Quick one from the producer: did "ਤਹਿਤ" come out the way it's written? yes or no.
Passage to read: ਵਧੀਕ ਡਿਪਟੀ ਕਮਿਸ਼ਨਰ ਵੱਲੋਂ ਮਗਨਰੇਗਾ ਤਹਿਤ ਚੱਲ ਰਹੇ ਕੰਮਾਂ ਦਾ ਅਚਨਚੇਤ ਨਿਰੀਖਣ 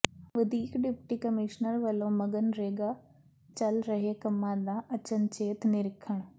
no